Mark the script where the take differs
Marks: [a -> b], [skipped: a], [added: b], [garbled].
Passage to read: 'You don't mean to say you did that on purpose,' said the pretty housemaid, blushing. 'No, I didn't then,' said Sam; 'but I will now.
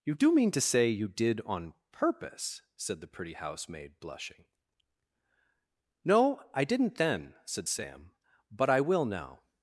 'You [don't -> do] mean to say you did [skipped: that] on purpose,' said the pretty housemaid, blushing. 'No, I didn't then,' said Sam; 'but I will now.